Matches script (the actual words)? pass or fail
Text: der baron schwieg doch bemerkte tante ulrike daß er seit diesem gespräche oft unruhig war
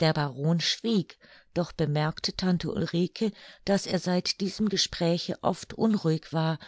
pass